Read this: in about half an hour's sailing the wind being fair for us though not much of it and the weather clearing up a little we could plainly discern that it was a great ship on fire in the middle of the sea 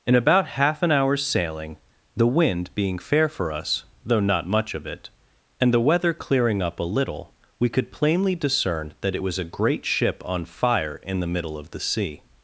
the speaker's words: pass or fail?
pass